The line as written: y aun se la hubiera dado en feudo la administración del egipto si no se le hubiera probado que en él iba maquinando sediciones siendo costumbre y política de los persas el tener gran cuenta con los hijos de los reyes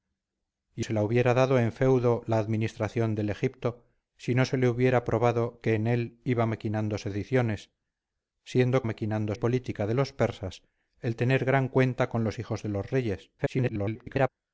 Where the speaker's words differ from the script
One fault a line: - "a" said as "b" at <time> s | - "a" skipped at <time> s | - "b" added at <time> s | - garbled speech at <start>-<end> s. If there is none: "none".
- "aun" skipped at 0.8 s
- "costumbre" said as "maquinando" at 8.8 s
- garbled speech at 13.4-14.3 s